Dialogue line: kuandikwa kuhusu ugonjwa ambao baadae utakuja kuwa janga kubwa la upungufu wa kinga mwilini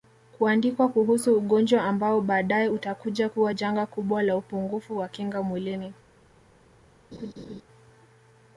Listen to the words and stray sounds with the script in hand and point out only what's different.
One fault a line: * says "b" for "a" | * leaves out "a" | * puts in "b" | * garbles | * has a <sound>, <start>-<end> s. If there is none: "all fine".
* has a laugh, 7.1-7.6 s